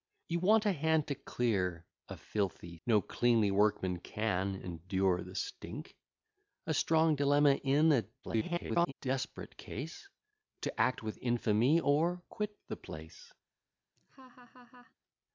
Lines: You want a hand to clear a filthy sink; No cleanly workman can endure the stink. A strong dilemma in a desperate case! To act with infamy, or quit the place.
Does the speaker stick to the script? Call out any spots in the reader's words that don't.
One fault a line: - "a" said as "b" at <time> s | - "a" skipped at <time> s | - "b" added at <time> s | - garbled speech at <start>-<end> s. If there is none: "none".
- "sink" skipped at 2.8 s
- garbled speech at 8.2-8.9 s